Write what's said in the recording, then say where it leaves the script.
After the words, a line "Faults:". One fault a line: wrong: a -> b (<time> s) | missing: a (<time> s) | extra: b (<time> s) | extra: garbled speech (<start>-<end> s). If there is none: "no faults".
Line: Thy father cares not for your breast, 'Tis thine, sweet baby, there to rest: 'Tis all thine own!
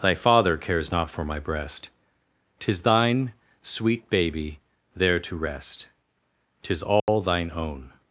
Thy father cares not for my breast, 'Tis thine, sweet baby, there to rest: 'Tis all thine own!
Faults:
wrong: your -> my (1.2 s)